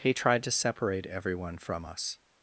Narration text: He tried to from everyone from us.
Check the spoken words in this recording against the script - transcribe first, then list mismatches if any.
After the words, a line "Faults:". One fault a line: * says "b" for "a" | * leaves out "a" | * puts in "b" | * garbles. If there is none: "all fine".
He tried to separate everyone from us.
Faults:
* says "separate" for "from"